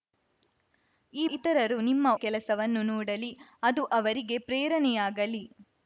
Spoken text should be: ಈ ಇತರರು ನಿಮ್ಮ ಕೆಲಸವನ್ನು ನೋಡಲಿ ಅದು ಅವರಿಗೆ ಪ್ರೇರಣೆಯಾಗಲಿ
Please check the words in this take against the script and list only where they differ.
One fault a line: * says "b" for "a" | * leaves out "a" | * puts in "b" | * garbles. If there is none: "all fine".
all fine